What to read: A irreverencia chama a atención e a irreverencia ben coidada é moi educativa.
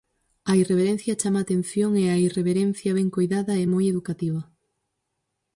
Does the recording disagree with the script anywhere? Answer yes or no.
no